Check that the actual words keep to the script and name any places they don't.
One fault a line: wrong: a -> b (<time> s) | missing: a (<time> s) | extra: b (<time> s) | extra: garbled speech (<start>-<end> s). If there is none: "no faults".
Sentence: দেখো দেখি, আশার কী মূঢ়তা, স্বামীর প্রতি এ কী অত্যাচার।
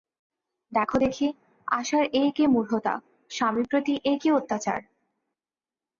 extra: এ (2.1 s)